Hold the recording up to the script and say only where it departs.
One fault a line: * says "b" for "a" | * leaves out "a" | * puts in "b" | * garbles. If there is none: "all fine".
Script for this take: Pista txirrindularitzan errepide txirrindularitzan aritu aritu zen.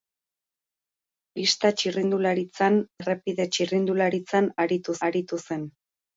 all fine